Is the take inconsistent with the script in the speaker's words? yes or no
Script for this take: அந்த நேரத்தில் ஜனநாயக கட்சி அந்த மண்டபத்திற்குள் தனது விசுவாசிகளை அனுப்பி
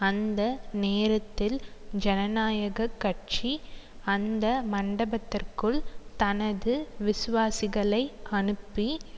no